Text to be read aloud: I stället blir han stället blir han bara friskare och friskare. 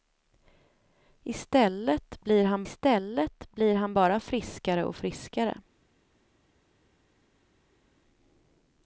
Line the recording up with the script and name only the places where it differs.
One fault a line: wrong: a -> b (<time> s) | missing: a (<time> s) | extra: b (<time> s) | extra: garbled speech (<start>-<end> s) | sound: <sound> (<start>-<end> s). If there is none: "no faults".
no faults